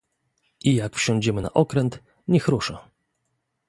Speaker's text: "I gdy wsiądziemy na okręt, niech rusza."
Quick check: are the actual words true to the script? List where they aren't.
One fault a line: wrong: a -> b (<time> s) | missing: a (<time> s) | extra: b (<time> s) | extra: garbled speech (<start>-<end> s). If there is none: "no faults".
wrong: gdy -> jak (0.8 s)